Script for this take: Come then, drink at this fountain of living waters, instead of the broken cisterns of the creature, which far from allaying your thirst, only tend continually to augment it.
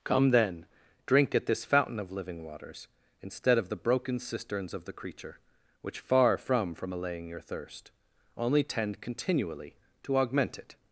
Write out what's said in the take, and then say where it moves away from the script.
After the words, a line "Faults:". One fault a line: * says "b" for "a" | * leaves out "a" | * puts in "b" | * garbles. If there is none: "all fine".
Come then, drink at this fountain of living waters, instead of the broken cisterns of the creature, which far from from allaying your thirst, only tend continually to augment it.
Faults:
* puts in "from"